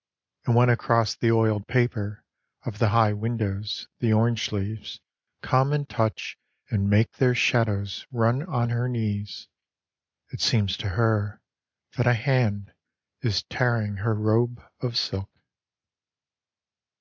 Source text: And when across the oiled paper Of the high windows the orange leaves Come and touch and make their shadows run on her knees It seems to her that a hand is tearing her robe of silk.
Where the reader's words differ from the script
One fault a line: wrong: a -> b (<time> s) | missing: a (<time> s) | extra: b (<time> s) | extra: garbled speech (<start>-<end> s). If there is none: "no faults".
no faults